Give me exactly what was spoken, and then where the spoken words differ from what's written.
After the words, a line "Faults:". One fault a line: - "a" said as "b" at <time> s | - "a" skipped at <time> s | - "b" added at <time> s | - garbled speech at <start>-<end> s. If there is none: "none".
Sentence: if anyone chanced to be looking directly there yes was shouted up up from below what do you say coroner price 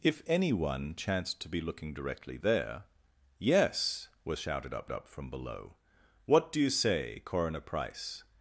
if anyone chanced to be looking directly there yes was shouted up up from below what do you say coroner price
Faults:
none